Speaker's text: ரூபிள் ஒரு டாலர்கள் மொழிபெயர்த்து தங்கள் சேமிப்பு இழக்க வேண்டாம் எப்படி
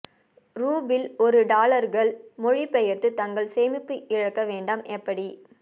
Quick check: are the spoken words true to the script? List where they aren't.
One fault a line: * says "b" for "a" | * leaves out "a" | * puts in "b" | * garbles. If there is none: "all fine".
all fine